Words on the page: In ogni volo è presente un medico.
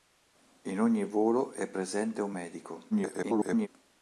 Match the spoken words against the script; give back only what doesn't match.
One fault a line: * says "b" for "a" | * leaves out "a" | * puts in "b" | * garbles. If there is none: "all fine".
* garbles